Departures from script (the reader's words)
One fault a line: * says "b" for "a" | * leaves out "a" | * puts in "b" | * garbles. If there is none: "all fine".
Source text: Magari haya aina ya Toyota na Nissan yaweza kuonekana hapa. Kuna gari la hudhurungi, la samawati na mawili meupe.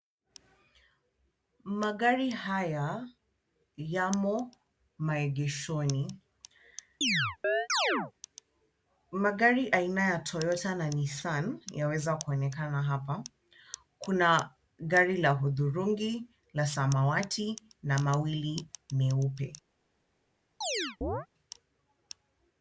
* puts in "yamo maegeshoni Magari"